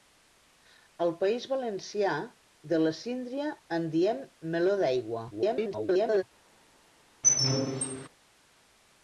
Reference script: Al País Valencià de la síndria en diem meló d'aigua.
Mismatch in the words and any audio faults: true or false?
true